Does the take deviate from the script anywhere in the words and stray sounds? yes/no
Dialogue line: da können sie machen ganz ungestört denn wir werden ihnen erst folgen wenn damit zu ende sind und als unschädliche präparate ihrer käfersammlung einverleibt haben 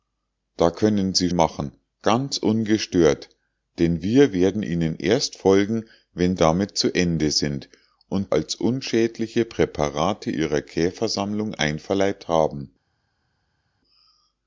no